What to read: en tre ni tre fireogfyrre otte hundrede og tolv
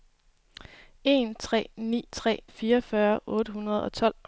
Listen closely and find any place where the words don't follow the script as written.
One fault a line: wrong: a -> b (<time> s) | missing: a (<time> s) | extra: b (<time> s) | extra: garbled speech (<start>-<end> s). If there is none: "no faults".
no faults